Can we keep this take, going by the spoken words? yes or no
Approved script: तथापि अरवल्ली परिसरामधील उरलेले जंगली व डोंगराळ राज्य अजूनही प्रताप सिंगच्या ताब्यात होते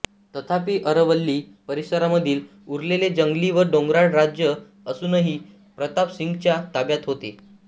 yes